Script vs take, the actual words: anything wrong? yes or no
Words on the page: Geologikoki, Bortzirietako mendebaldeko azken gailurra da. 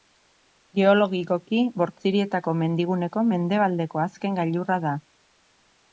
yes